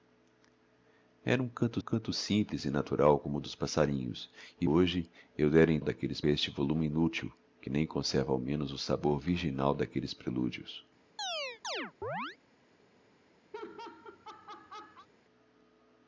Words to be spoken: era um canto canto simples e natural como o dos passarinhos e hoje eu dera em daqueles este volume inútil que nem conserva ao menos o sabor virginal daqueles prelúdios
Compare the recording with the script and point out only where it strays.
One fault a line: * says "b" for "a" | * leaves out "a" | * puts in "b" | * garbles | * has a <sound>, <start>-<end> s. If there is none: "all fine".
* has a chirp, 11.2-12.4 s
* has a laugh, 13.5-15.1 s